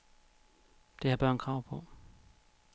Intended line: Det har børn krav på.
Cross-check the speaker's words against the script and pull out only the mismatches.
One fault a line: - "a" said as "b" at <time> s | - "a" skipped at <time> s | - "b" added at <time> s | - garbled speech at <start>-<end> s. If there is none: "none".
none